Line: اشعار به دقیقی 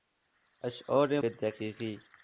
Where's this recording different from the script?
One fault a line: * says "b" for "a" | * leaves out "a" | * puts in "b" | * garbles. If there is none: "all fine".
all fine